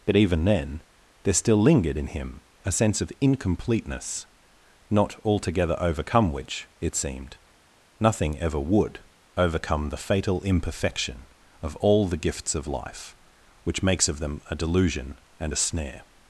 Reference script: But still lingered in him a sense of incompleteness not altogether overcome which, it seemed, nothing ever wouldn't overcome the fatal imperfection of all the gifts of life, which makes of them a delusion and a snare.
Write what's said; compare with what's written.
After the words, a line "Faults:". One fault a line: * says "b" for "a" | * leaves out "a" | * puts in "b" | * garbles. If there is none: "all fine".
But even then there still lingered in him a sense of incompleteness not altogether overcome which, it seemed, nothing ever would overcome the fatal imperfection of all the gifts of life, which makes of them a delusion and a snare.
Faults:
* puts in "even then there"
* says "would" for "wouldn't"